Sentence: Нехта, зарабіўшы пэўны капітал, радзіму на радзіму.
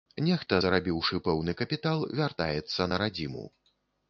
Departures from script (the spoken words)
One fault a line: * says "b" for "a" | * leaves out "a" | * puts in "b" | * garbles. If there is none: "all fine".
* says "вяртаецца" for "радзіму"